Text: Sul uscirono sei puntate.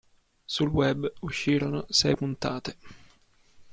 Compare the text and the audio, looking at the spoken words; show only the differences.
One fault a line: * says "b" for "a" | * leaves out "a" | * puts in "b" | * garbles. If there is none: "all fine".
* puts in "web"